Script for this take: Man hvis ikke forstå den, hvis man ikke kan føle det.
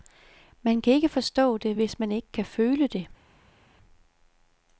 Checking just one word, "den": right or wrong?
wrong